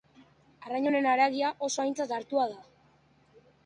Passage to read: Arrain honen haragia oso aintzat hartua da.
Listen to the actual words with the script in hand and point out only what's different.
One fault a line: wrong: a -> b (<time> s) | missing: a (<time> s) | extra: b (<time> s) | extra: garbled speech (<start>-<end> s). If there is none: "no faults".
no faults